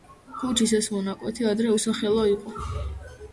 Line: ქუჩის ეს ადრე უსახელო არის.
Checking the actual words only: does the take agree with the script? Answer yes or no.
no